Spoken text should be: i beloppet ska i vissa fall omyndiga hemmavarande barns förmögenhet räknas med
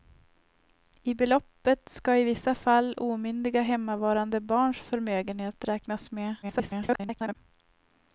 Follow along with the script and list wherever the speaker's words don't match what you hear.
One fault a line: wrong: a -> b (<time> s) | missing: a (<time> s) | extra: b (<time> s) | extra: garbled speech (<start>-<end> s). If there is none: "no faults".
extra: garbled speech (6.4-7.4 s)